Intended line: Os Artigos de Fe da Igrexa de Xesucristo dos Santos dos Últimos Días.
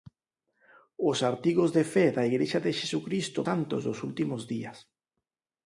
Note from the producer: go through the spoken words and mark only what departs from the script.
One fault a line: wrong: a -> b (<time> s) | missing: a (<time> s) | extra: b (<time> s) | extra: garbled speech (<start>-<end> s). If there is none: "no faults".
missing: dos (3.4 s)